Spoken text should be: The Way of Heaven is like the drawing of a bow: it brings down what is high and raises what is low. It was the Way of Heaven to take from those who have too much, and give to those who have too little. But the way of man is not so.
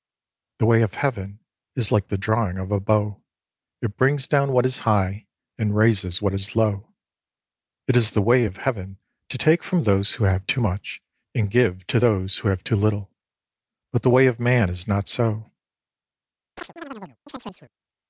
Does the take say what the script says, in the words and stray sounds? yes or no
no